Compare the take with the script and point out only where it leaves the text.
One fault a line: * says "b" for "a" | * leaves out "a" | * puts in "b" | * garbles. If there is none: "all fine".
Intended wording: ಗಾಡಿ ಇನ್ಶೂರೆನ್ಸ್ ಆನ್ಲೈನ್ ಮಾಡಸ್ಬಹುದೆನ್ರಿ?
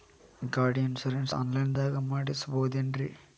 * puts in "ದಾಗ"